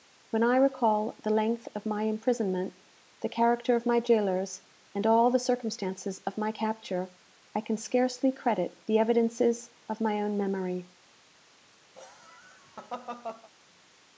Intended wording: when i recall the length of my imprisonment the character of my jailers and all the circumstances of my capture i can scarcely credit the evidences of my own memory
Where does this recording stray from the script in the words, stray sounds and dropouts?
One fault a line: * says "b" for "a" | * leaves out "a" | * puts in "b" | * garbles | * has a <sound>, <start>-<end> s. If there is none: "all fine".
* has a laugh, 11.9-13.5 s